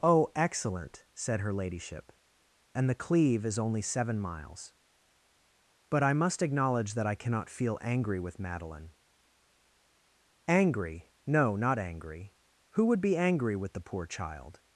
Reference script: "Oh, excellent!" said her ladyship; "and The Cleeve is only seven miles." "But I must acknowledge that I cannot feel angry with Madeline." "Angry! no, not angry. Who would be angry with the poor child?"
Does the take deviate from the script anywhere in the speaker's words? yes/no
no